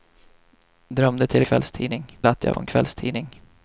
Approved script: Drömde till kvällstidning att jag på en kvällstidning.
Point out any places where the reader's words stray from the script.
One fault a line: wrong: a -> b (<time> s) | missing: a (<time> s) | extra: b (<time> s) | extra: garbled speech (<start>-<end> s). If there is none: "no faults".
no faults